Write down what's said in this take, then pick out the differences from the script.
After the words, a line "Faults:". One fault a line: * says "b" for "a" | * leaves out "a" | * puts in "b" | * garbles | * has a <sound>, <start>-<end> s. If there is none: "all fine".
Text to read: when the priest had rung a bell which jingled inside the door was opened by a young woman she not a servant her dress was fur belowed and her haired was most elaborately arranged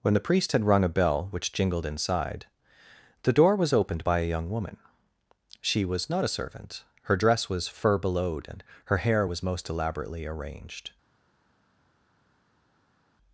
when the priest had rung a bell which jingled inside the door was opened by a young woman she was not a servant her dress was fur belowed and her hair was most elaborately arranged
Faults:
* puts in "was"
* says "hair" for "haired"